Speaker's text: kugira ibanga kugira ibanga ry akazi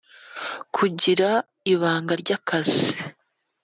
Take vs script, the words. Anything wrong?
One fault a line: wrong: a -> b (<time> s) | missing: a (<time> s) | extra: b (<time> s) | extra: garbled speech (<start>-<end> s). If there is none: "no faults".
missing: kugira ibanga (2.1 s)